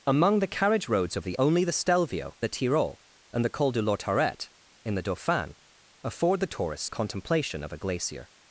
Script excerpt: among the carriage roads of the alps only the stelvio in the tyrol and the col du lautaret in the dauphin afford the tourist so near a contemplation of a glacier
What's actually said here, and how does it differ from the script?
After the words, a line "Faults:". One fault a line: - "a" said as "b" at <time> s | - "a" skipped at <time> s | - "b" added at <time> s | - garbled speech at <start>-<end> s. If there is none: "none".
among the carriage roads of the only the stelvio the tyrol and the col du lautaret in the dauphin afford the tourist a contemplation of a glacier
Faults:
- "alps" skipped at 1.4 s
- "in" skipped at 2.4 s
- "so near" skipped at 6.8 s